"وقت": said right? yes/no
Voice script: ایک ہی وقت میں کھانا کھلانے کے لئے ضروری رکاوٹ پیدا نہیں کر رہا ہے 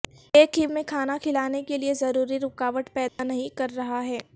no